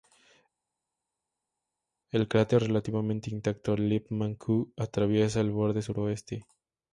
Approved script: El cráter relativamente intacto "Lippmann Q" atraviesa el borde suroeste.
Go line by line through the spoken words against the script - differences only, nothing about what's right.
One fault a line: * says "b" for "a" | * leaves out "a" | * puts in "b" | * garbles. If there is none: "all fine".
all fine